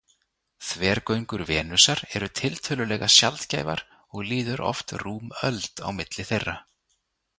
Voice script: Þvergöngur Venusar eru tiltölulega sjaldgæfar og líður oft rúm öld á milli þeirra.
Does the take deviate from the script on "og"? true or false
false